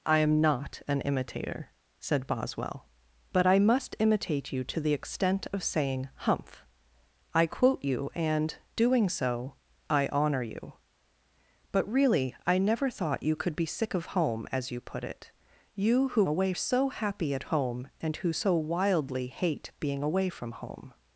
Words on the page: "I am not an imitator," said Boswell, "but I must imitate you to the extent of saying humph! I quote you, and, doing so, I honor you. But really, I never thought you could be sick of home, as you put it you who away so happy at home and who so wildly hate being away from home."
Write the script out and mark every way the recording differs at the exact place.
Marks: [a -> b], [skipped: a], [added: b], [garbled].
"I am not an imitator," said Boswell, "but I must imitate you to the extent of saying humph! I quote you, and, doing so, I honor you. But really, I never thought you could be sick of home, as you put it you who away so happy at home and who so wildly hate being away from home."